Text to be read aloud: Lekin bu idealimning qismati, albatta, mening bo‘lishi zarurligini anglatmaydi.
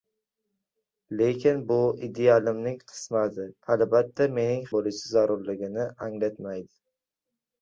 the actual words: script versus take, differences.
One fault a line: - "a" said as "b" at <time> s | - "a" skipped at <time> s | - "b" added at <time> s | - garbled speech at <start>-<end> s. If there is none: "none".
none